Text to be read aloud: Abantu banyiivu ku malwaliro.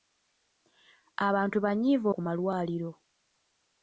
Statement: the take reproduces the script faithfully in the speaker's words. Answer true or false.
true